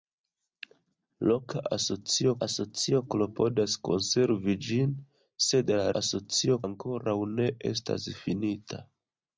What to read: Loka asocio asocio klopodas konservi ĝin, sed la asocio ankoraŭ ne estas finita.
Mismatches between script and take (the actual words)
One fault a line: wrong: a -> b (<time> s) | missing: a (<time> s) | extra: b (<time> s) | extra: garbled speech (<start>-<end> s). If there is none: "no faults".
no faults